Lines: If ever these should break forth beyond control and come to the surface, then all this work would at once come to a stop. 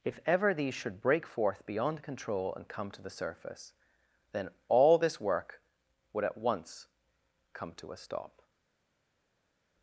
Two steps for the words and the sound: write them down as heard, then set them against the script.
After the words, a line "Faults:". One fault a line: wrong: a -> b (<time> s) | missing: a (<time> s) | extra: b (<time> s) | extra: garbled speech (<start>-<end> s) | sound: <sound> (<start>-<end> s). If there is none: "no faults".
If ever these should break forth beyond control and come to the surface, then all this work would at once come to a stop.
Faults:
no faults